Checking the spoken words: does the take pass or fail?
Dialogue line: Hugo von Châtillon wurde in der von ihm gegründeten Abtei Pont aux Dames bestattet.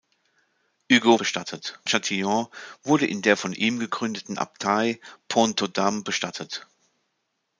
fail